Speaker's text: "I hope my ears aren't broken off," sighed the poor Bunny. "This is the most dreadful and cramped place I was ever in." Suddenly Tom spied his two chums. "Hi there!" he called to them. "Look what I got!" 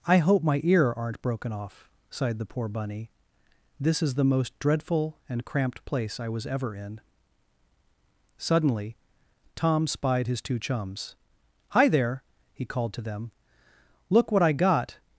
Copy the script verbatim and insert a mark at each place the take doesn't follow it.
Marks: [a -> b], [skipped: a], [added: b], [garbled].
"I hope my [ears -> ear] aren't broken off," sighed the poor Bunny. "This is the most dreadful and cramped place I was ever in." Suddenly Tom spied his two chums. "Hi there!" he called to them. "Look what I got!"